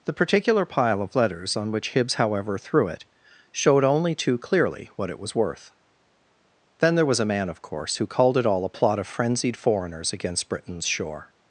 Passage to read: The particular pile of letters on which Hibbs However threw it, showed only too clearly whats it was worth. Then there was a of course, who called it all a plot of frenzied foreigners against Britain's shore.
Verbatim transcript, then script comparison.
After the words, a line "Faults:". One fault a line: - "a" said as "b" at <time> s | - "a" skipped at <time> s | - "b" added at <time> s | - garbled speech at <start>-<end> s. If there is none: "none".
The particular pile of letters on which Hibbs However threw it, showed only too clearly what it was worth. Then there was a man, of course, who called it all a plot of frenzied foreigners against Britain's shore.
Faults:
- "whats" said as "what" at 5.0 s
- "man" added at 7.2 s